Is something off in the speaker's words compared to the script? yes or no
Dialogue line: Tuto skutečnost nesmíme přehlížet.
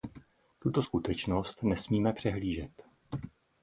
no